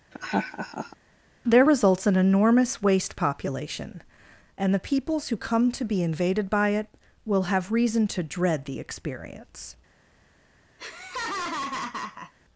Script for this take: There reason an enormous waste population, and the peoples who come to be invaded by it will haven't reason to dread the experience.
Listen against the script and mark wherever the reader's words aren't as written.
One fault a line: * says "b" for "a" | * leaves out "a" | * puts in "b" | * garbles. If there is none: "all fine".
* says "results" for "reason"
* says "have" for "haven't"